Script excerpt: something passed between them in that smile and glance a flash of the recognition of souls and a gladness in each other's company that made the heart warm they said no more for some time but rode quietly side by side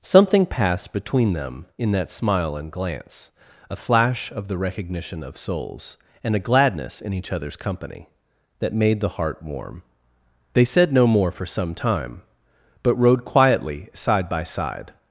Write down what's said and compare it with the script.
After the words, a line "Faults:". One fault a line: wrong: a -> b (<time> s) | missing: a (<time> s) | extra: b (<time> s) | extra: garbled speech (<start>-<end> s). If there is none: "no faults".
something passed between them in that smile and glance a flash of the recognition of souls and a gladness in each other's company that made the heart warm they said no more for some time but rode quietly side by side
Faults:
no faults